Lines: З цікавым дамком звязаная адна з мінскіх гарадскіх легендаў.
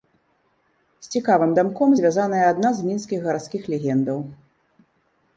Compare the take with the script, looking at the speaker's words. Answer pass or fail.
pass